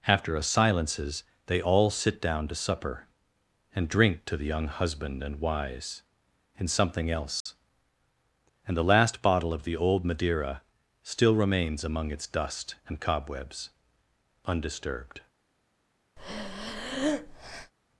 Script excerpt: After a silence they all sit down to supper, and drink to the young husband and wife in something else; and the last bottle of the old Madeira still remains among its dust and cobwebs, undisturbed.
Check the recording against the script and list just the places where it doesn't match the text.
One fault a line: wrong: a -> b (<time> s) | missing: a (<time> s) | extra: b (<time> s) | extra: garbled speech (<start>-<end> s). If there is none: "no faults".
wrong: silence -> silences (0.4 s)
wrong: wife -> wise (5.4 s)